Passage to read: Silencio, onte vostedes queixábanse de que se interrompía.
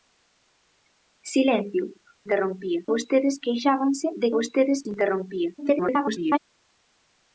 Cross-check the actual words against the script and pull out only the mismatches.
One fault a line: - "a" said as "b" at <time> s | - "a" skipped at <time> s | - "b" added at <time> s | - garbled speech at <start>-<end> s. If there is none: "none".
- "onte" said as "interrompía" at 2.2 s
- "que" said as "vostedes" at 4.4 s
- garbled speech at 5.6-6.4 s